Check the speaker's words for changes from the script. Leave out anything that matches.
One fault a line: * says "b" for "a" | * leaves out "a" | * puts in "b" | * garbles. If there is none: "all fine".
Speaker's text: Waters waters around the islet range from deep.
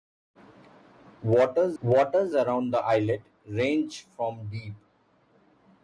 all fine